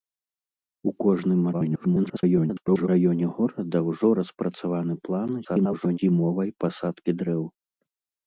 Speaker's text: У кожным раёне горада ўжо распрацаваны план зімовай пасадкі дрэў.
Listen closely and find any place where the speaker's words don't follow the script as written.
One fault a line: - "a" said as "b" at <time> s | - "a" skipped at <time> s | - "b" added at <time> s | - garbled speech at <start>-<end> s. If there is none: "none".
- garbled speech at 1.5-2.9 s
- garbled speech at 5.4-6.0 s